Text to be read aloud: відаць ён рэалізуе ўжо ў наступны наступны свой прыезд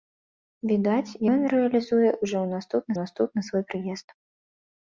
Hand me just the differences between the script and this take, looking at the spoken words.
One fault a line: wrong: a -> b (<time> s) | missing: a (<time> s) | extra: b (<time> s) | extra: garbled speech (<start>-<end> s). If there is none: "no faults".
no faults